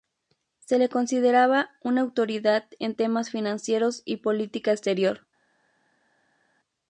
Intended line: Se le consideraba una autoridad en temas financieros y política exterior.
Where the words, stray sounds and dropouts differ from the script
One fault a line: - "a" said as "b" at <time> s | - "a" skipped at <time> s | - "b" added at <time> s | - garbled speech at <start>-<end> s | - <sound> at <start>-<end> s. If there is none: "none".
none